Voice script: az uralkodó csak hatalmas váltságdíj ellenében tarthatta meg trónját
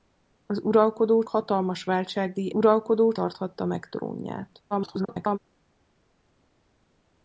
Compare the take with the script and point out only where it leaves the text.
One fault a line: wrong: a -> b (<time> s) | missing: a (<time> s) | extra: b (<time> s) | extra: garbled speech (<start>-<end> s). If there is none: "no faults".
missing: csak (1.2 s)
wrong: ellenében -> uralkodó (2.5 s)
extra: garbled speech (4.7-5.4 s)